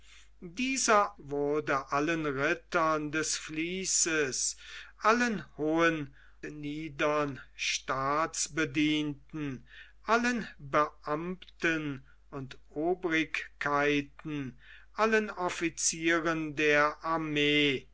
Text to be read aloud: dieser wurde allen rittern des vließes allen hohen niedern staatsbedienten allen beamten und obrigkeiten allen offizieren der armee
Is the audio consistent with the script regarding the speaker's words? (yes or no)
yes